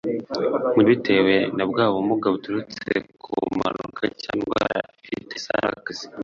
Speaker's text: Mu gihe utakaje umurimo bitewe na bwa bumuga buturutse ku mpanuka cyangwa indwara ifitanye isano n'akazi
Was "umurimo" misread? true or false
true